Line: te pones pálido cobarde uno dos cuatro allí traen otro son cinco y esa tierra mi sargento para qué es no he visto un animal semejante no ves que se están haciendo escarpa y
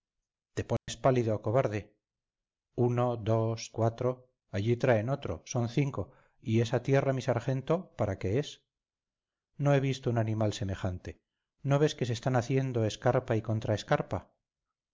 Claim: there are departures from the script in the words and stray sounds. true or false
true